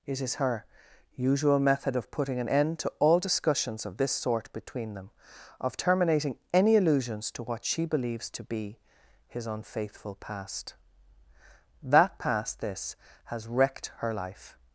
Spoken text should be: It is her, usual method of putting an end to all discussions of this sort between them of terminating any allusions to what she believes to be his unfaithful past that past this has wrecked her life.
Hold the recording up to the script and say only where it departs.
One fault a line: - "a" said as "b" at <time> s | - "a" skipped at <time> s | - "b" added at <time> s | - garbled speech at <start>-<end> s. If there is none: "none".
none